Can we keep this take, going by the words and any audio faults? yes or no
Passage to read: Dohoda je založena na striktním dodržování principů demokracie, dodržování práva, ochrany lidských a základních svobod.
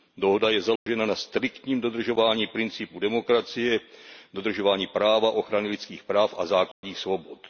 no